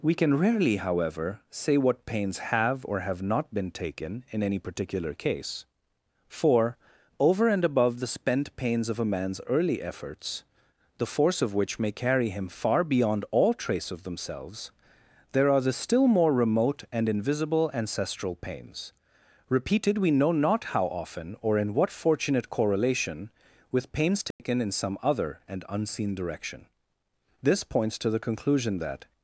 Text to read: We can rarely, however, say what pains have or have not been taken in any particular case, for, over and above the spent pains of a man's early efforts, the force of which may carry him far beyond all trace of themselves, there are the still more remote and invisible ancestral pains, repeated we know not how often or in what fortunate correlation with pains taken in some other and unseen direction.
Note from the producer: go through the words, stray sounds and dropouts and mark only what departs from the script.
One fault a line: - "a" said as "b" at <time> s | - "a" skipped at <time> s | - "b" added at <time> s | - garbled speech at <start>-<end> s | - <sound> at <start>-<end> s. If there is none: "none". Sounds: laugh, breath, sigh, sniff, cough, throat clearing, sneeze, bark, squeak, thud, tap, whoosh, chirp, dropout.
- dropout at 24.3-24.4 s
- "This points to the conclusion that" added at 27.4 s